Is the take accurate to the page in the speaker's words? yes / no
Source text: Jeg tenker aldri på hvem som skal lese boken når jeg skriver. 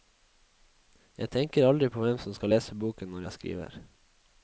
yes